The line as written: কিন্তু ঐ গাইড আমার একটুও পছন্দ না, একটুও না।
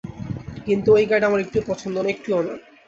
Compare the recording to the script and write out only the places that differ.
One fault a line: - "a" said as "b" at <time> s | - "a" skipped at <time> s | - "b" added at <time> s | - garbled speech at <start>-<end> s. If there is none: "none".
none